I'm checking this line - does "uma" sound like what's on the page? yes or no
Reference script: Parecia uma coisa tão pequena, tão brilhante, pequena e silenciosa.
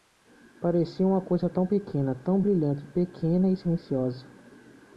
yes